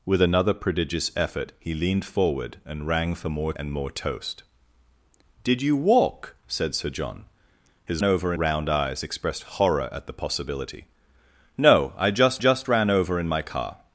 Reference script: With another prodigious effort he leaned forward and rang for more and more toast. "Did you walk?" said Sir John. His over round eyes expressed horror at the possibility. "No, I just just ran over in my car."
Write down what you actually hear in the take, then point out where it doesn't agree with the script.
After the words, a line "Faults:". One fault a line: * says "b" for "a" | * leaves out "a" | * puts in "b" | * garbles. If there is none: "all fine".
With another prodigious effort he leaned forward and rang for more and more toast. "Did you walk?" said Sir John. His over round eyes expressed horror at the possibility. "No, I just just ran over in my car."
Faults:
all fine